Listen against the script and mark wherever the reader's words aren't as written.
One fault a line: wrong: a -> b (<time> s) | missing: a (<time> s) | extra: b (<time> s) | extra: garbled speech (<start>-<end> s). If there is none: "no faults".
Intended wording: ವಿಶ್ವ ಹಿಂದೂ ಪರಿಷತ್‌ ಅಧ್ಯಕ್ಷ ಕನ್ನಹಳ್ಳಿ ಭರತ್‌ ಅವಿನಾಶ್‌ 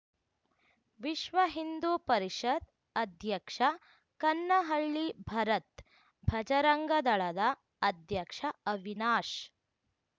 extra: ಭಜರಂಗದಳದ ಅಧ್ಯಕ್ಷ (6.2 s)